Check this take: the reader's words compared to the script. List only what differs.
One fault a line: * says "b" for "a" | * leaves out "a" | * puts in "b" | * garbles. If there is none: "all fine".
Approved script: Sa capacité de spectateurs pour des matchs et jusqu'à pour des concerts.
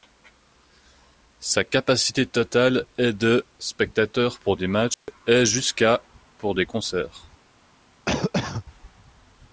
* puts in "totale est"